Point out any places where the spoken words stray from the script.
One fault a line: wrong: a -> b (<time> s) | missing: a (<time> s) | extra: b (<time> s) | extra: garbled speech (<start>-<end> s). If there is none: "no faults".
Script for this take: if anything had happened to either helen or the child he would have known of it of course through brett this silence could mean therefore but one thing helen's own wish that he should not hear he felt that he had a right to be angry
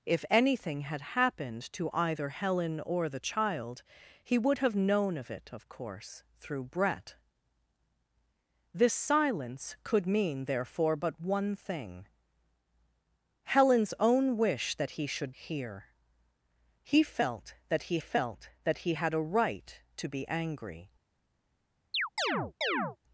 wrong: not hear -> hear he felt that (15.3 s)